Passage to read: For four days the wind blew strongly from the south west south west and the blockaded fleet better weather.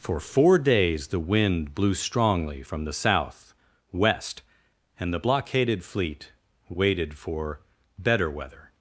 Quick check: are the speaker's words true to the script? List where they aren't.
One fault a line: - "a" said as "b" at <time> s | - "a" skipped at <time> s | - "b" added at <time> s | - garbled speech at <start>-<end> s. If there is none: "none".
- "south west" skipped at 4.4 s
- "waited for" added at 6.7 s